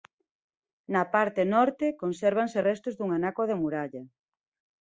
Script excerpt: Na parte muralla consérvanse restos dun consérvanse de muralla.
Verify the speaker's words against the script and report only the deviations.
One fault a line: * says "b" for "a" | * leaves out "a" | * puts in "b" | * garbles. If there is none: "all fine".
* says "norte" for "muralla"
* says "anaco" for "consérvanse"